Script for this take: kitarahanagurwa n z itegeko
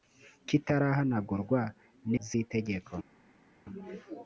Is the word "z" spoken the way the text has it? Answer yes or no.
yes